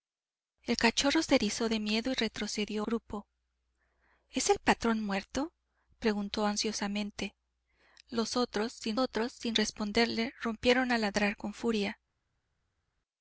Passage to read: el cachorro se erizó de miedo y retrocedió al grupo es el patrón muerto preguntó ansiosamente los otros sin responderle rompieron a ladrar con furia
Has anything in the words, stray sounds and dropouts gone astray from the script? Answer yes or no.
yes